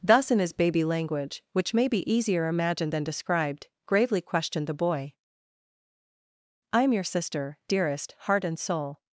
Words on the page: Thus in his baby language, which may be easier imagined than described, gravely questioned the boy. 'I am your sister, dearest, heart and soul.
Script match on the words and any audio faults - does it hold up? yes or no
yes